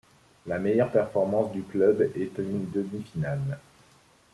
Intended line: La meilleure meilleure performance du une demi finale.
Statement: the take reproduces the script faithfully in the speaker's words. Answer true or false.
false